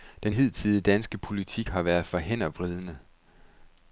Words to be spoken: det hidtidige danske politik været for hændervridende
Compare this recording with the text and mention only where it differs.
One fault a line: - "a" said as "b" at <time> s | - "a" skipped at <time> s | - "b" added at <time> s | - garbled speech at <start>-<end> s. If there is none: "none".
- "det" said as "den" at 0.2 s
- "har" added at 1.7 s